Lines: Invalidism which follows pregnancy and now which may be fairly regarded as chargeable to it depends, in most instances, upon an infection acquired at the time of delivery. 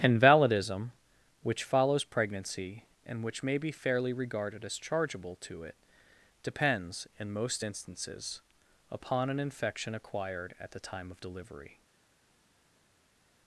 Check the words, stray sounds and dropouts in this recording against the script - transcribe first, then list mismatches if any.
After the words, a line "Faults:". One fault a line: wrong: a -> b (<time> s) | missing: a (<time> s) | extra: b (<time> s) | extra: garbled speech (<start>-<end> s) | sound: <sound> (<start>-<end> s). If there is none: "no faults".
Invalidism which follows pregnancy and which may be fairly regarded as chargeable to it depends, in most instances, upon an infection acquired at the time of delivery.
Faults:
missing: now (3.2 s)